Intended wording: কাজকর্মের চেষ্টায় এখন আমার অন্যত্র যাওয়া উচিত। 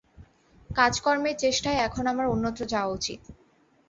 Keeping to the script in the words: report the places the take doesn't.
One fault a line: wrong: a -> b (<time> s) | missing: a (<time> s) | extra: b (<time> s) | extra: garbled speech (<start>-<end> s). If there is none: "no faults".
no faults